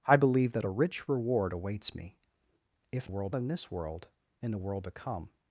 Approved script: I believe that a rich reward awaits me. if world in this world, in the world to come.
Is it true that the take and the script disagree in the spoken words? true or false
false